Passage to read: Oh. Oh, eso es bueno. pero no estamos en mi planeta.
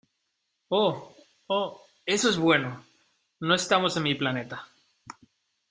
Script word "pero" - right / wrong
wrong